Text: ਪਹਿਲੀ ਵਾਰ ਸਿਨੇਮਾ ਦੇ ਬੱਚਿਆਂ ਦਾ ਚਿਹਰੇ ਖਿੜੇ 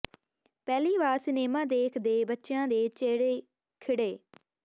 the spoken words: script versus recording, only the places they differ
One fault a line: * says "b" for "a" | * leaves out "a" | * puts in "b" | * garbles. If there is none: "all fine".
* puts in "ਦੇਖ"
* says "ਦੇ" for "ਦਾ"